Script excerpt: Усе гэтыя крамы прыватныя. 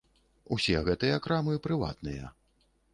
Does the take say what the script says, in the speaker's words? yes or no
yes